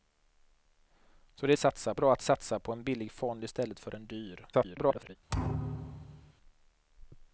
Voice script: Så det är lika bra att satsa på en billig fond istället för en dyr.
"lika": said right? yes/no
no